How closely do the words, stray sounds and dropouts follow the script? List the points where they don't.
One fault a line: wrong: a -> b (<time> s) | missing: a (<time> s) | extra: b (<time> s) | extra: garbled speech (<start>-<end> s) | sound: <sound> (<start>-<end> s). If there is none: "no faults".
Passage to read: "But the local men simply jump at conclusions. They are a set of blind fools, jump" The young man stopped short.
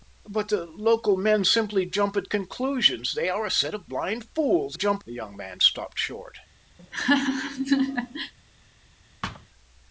sound: laugh (6.8-8.3 s)
sound: thud (9.2-9.5 s)